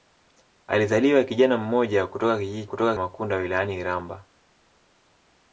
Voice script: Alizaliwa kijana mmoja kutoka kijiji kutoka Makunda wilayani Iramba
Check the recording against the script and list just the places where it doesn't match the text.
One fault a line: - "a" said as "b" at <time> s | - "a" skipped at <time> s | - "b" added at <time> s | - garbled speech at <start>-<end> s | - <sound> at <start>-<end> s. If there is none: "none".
none